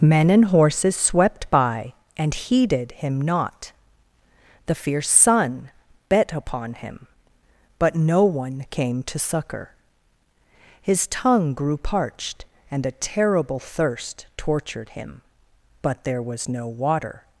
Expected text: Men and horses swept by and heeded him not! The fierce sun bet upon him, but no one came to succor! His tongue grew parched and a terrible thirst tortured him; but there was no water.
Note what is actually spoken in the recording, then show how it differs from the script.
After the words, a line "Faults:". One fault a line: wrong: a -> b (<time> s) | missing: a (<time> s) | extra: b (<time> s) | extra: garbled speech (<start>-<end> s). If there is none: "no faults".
Men and horses swept by and heeded him not! The fierce sun bet upon him, but no one came to succor! His tongue grew parched and a terrible thirst tortured him; but there was no water.
Faults:
no faults